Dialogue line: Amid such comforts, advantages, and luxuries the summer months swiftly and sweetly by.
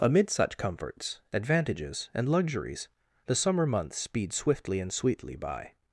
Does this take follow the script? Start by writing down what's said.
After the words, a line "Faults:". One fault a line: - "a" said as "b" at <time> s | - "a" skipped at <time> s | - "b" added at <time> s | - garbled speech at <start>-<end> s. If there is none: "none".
Amid such comforts, advantages, and luxuries the summer months speed swiftly and sweetly by.
Faults:
- "speed" added at 4.0 s